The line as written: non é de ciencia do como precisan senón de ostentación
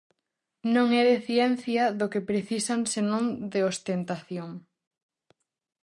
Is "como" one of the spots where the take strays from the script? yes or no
yes